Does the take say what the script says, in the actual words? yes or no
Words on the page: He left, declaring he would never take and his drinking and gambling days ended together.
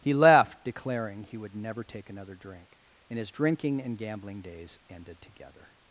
no